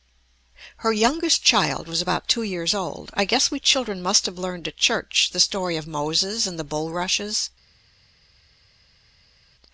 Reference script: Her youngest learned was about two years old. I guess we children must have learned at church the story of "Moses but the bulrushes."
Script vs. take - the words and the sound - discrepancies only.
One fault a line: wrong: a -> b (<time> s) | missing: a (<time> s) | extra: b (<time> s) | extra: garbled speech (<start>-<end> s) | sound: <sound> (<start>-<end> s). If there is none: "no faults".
wrong: learned -> child (1.4 s)
wrong: but -> and (6.5 s)